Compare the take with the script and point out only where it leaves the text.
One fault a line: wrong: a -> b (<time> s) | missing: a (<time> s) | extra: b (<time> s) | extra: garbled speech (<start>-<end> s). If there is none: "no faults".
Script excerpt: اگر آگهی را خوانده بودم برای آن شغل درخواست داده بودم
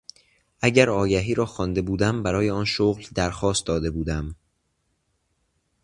no faults